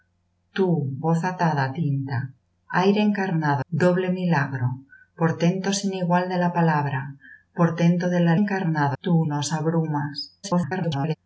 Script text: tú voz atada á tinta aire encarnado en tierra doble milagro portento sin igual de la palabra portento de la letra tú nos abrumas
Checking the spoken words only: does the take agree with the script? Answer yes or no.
no